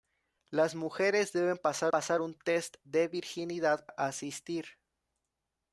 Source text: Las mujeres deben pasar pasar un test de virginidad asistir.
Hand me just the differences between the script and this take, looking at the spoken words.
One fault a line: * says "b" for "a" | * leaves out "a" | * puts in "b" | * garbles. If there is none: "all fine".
all fine